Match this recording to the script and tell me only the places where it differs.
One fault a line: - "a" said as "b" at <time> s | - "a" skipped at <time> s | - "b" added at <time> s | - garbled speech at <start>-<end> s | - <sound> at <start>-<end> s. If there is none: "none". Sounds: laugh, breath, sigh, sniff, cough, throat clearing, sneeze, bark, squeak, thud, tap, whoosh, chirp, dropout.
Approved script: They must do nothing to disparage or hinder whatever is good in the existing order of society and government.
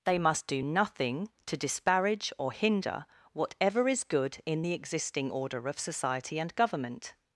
none